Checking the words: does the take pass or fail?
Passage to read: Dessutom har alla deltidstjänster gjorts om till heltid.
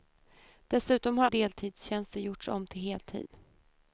fail